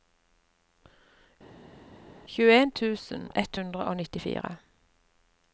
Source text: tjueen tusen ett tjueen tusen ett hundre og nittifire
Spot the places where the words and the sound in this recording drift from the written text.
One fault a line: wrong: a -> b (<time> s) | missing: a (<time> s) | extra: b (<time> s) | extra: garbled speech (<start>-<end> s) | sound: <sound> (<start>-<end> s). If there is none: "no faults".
missing: tjueen tusen ett (3.6 s)